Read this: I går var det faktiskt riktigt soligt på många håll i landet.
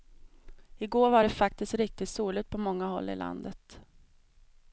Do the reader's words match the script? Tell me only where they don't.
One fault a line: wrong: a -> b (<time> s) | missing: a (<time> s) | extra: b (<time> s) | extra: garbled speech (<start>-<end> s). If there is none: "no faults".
no faults